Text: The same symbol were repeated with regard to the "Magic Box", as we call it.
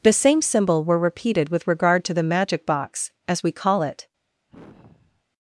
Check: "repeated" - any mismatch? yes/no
no